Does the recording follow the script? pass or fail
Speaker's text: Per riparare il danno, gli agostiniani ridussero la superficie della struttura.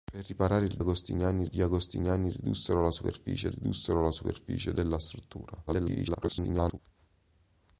fail